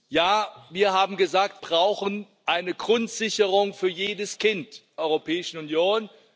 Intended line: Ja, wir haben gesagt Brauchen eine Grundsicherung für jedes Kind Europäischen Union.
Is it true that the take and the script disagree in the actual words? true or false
false